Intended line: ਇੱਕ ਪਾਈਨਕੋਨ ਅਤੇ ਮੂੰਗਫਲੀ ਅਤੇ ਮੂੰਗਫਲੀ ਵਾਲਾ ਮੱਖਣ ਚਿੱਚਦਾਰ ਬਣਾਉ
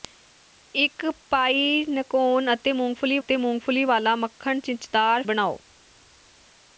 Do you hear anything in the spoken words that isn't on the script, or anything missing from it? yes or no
no